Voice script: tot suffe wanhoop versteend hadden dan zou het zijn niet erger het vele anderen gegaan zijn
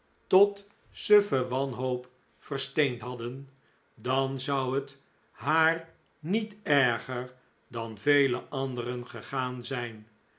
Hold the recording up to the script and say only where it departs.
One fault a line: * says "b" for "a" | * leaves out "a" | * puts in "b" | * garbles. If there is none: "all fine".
* says "haar" for "zijn"
* says "dan" for "het"